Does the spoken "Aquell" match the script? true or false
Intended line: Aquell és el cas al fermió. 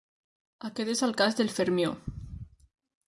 false